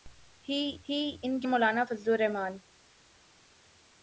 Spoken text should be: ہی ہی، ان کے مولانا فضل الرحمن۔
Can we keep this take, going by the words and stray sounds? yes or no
yes